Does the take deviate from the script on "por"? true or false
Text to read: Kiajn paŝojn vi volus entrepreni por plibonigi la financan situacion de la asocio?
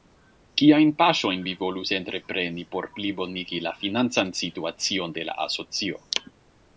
false